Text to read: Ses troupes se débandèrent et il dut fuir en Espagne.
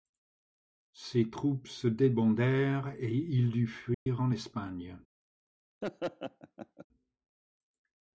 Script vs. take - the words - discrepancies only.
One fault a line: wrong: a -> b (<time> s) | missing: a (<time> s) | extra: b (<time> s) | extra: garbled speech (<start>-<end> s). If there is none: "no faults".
no faults